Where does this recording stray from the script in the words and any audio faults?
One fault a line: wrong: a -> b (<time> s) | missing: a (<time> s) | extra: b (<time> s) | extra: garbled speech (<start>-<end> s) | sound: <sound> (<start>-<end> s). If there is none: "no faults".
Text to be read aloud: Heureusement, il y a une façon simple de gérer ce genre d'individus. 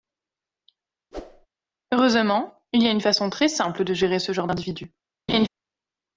sound: whoosh (1.1-1.5 s)
extra: très (3.3 s)
sound: laugh (5.3-5.5 s)